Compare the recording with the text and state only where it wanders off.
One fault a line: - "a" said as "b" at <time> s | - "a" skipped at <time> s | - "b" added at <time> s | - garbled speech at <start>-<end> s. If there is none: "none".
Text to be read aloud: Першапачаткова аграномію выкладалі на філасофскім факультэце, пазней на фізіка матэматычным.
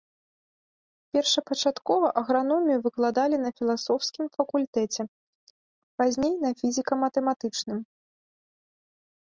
none